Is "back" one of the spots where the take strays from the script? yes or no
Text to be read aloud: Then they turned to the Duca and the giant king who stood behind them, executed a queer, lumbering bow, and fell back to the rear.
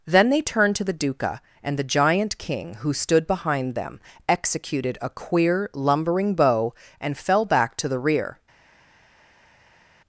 no